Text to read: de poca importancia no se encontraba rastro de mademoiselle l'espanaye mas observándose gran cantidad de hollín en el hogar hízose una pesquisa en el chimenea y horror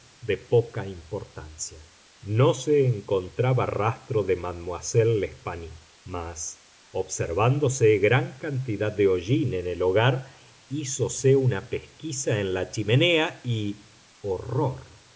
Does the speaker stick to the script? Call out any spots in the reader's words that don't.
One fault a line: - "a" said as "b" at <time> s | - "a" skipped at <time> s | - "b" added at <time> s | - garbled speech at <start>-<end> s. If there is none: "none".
- "el" said as "la" at 12.5 s